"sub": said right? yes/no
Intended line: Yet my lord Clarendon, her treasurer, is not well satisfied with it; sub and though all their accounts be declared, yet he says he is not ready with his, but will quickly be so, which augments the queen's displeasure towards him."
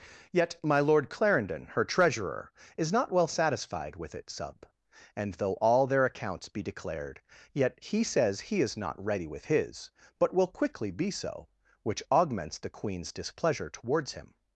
yes